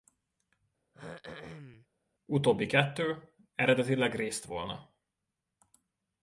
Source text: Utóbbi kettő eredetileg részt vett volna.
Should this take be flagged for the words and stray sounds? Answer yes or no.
yes